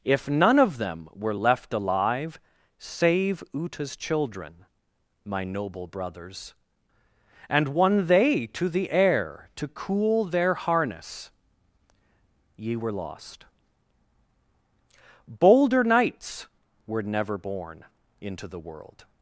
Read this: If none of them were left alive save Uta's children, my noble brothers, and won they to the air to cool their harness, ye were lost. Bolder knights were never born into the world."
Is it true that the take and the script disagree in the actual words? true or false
false